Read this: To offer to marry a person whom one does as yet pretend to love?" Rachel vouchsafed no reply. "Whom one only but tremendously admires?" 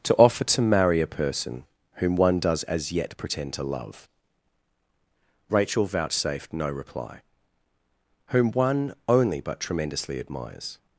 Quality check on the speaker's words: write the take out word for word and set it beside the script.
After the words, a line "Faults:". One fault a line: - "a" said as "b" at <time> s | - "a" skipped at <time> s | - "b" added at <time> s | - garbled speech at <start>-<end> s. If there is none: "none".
To offer to marry a person whom one does as yet pretend to love?" Rachel vouchsafed no reply. "Whom one only but tremendously admires?"
Faults:
none